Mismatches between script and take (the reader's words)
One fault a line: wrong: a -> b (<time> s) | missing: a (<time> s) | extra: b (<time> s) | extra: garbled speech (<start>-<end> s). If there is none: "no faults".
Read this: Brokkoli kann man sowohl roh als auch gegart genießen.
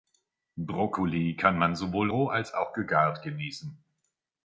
no faults